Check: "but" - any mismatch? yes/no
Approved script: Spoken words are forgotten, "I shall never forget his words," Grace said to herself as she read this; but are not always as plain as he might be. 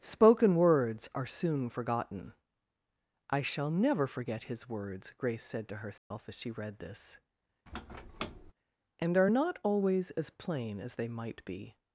yes